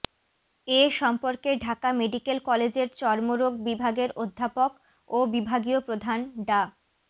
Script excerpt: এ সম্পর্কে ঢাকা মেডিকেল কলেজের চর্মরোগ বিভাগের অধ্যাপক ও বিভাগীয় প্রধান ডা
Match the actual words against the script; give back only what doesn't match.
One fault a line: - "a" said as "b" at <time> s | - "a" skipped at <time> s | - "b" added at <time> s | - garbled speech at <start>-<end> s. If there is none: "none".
none